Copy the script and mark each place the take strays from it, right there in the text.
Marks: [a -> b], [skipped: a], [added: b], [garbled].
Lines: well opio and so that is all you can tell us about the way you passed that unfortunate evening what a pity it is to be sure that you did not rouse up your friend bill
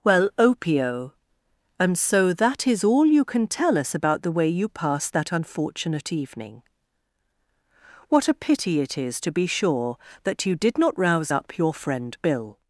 well opio and so that is all you can tell us about the way you passed that unfortunate evening what a pity it is to be sure that you did not rouse up your friend bill